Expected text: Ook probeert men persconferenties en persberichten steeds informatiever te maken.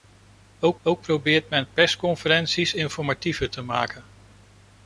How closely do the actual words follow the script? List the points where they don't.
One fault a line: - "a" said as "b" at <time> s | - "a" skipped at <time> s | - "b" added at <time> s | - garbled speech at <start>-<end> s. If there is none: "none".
- "ook" added at 0.8 s
- "en persberichten steeds" skipped at 2.7 s